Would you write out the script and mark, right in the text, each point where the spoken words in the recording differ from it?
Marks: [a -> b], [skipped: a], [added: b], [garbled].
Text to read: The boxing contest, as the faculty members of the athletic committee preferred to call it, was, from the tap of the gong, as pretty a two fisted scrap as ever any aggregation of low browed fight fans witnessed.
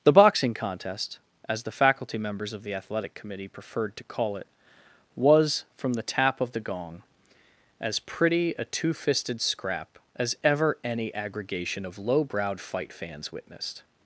The boxing contest, as the faculty members of the athletic committee preferred to call it, was, from the tap of the gong, as pretty a two fisted scrap as ever any aggregation of low browed fight fans witnessed.